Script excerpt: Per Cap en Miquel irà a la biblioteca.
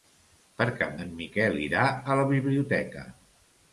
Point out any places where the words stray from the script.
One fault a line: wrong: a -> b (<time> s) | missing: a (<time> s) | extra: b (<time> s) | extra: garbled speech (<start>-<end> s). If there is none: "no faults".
no faults